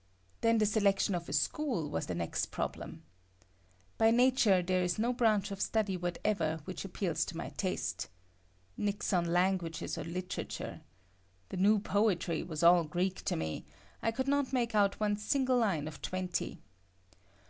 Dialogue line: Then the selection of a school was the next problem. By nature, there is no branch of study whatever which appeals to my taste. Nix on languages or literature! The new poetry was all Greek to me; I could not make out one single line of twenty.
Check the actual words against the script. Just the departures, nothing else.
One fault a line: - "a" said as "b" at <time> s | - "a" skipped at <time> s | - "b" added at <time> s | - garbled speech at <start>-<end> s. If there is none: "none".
none